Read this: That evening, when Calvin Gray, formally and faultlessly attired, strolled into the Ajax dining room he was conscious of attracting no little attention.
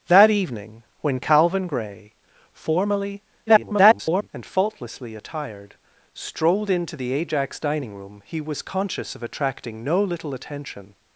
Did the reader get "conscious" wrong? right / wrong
right